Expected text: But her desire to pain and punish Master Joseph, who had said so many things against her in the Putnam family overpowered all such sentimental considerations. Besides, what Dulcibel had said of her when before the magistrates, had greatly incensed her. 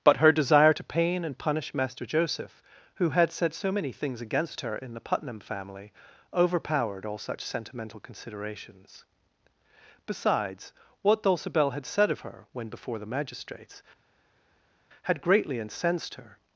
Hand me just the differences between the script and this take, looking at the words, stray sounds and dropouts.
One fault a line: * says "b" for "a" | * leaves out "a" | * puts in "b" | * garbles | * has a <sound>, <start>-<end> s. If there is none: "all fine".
all fine